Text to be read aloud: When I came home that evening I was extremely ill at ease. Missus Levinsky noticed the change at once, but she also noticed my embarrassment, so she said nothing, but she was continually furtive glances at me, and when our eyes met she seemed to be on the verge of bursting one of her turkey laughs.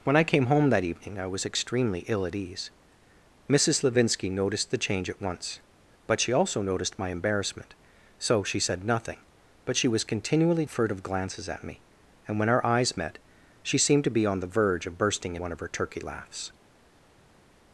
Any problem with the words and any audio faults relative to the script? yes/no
no